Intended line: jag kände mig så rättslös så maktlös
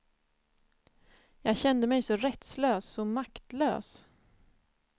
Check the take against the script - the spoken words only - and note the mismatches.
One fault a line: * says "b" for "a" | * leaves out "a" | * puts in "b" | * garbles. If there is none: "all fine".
all fine